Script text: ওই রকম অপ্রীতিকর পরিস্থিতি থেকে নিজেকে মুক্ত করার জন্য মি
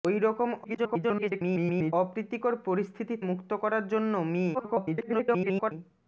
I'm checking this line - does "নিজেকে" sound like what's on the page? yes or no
no